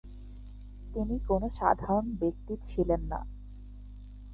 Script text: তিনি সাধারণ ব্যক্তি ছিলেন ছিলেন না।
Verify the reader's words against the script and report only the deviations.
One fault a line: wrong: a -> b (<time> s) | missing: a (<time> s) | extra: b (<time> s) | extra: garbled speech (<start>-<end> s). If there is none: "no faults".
extra: কোন (1.3 s)
missing: ছিলেন (3.0 s)